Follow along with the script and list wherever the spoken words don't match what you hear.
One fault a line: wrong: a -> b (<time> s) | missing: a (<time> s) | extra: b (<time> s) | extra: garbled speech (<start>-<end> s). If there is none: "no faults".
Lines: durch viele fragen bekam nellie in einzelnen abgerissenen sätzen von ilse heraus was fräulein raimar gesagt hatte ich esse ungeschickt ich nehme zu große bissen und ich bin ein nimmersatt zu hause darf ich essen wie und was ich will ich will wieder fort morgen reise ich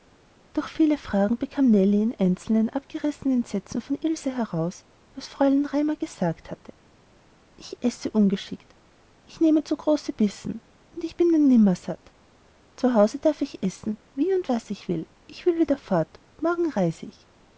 no faults